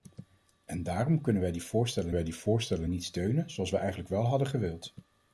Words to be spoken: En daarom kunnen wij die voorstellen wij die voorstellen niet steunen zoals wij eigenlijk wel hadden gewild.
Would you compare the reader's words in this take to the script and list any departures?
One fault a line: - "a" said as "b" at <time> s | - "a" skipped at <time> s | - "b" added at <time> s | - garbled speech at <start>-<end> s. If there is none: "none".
none